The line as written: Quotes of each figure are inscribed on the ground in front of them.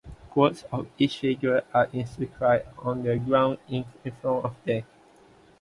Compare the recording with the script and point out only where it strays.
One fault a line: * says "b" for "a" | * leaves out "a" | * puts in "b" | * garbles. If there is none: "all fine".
all fine